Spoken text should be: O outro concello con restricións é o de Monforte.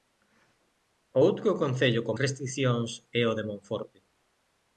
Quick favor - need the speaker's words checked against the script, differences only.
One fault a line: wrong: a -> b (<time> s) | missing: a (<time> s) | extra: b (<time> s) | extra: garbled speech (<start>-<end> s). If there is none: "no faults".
no faults